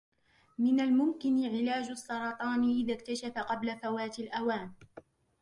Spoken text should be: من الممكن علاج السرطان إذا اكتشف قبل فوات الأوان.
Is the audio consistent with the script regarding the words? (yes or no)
yes